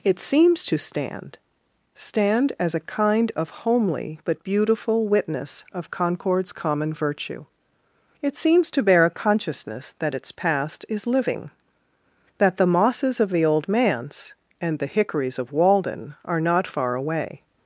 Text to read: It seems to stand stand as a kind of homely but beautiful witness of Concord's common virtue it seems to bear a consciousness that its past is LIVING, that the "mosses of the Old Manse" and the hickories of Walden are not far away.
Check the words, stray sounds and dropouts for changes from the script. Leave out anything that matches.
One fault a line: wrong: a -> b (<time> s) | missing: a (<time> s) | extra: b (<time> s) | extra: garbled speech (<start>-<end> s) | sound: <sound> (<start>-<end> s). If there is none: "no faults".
no faults